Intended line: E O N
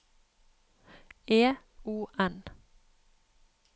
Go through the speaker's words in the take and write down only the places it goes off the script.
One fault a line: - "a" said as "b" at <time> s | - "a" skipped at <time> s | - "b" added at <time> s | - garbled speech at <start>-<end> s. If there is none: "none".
none